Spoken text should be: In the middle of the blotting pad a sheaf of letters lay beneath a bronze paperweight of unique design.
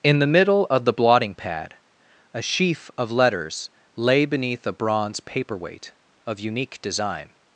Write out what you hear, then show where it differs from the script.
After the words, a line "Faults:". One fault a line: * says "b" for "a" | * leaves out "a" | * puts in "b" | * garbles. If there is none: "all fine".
In the middle of the blotting pad a sheaf of letters lay beneath a bronze paperweight of unique design.
Faults:
all fine